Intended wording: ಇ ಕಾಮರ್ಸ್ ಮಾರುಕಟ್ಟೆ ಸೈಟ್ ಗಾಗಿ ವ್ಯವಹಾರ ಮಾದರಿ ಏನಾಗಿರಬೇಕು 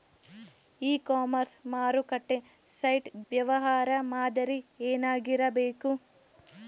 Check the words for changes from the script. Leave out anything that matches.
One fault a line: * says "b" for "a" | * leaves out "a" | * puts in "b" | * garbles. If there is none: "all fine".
* leaves out "ಗಾಗಿ"